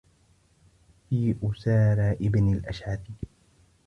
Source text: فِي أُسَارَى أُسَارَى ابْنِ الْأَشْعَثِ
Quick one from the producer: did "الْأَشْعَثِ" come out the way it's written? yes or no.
yes